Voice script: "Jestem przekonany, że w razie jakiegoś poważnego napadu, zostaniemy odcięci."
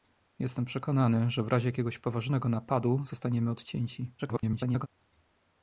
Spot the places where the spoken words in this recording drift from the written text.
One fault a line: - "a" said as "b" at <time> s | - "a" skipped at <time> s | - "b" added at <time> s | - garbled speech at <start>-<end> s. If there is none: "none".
- garbled speech at 4.2-4.9 s